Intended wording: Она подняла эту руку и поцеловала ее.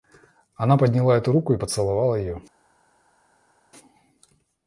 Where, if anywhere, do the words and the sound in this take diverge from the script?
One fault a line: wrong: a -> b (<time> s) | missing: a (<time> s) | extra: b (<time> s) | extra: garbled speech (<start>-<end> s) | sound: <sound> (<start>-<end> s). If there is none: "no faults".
no faults